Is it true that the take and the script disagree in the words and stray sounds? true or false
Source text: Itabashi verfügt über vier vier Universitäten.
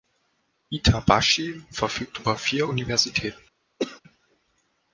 true